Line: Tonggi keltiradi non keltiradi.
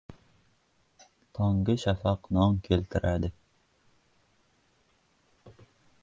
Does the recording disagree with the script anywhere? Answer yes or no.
yes